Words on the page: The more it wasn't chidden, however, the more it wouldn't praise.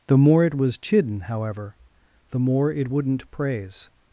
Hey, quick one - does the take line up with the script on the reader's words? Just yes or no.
no